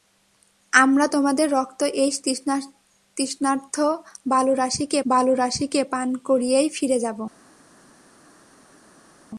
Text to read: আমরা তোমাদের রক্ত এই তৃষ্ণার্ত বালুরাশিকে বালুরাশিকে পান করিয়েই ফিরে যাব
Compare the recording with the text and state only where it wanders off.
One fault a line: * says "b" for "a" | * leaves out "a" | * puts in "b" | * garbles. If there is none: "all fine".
all fine